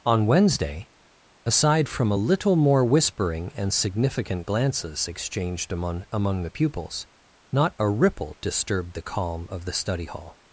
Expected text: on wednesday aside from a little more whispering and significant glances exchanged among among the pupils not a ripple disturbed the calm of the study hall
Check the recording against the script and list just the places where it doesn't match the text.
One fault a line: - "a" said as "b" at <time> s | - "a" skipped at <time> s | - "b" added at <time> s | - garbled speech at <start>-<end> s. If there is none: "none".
none